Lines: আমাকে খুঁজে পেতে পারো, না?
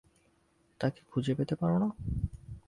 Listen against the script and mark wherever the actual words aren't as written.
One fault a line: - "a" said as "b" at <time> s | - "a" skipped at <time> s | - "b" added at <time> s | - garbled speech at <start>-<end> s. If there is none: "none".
- "আমাকে" said as "তাকে" at 0.8 s